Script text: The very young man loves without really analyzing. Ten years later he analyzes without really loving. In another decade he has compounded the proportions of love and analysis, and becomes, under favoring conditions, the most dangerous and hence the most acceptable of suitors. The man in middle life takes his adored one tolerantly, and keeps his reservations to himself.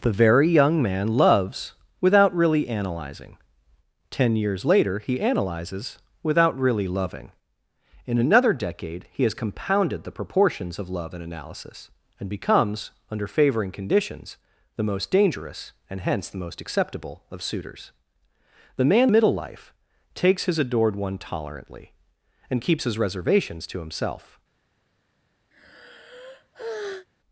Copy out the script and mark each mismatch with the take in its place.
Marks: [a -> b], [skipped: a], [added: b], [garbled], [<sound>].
The very young man loves without really analyzing. Ten years later he analyzes without really loving. In another decade he has compounded the proportions of love and analysis, and becomes, under favoring conditions, the most dangerous and hence the most acceptable of suitors. The man [skipped: in] middle life takes his adored one tolerantly, and keeps his reservations to himself. [sigh]